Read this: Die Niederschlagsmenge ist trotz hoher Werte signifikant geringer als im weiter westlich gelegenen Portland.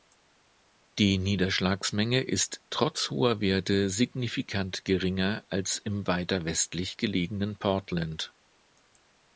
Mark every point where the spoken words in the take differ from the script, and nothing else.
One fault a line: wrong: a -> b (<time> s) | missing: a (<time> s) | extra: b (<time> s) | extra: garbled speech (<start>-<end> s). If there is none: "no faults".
no faults